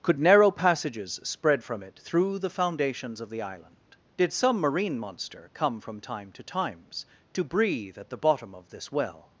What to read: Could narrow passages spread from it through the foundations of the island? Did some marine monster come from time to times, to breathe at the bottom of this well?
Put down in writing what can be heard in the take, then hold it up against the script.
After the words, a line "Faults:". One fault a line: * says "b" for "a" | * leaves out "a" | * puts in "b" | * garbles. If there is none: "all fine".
Could narrow passages spread from it through the foundations of the island? Did some marine monster come from time to times, to breathe at the bottom of this well?
Faults:
all fine